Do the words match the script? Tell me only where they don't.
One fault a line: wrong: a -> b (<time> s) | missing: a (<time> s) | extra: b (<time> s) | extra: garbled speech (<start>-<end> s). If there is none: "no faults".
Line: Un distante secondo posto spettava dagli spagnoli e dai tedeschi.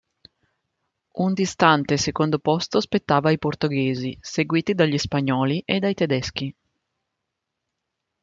extra: ai portoghesi seguiti (3.3 s)